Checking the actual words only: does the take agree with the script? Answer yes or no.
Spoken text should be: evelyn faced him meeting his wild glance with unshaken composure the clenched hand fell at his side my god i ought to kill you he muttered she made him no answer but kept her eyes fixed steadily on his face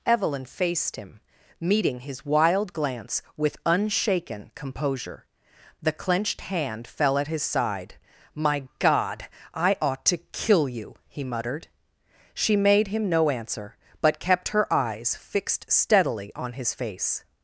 yes